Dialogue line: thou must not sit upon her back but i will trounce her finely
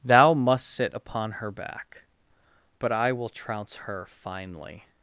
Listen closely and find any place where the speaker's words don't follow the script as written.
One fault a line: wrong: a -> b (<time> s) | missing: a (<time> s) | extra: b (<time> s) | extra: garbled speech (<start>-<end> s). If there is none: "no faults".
missing: not (0.7 s)